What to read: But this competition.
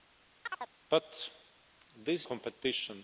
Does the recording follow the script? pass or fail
pass